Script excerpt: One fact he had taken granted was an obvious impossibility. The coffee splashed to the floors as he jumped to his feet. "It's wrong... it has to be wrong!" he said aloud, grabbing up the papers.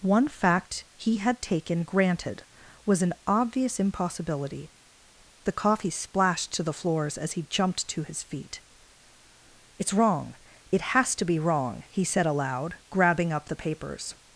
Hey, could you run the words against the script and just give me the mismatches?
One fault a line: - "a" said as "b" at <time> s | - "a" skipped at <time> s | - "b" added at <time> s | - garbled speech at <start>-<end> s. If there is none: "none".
none